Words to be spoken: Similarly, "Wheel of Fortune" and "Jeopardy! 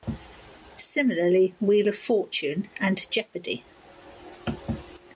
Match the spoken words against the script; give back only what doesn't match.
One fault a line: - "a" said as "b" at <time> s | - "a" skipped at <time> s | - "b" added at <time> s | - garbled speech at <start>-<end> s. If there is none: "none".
none